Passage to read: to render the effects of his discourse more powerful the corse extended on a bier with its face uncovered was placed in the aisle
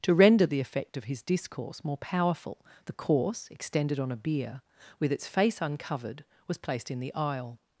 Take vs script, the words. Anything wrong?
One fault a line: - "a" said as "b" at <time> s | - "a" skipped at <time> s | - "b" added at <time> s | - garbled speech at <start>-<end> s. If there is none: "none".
- "effects" said as "effect" at 0.6 s